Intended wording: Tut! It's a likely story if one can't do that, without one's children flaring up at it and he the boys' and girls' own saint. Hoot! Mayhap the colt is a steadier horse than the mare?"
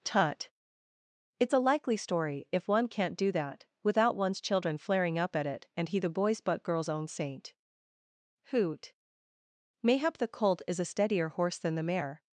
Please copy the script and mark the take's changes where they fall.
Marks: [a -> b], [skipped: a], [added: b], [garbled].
Tut! It's a likely story if one can't do that, without one's children flaring up at it and he the boys' [and -> but] girls' own saint. Hoot! Mayhap the colt is a steadier horse than the mare?"